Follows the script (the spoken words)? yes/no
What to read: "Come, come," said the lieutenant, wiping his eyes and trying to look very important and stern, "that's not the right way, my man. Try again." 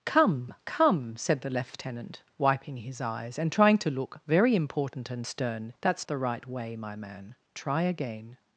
no